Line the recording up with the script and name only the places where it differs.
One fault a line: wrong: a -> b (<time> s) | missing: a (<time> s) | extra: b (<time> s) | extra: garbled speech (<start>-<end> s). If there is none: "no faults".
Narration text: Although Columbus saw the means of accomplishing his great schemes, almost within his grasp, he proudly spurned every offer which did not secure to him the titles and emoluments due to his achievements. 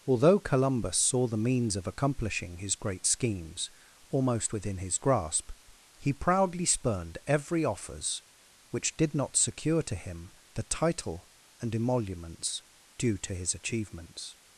wrong: offer -> offers (7.6 s)
wrong: titles -> title (10.6 s)